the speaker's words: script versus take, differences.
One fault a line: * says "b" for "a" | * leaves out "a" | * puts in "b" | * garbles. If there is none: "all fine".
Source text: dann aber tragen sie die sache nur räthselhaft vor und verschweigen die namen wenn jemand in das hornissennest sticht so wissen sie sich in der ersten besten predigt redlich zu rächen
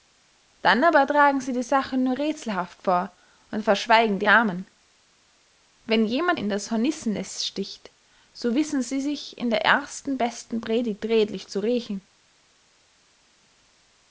all fine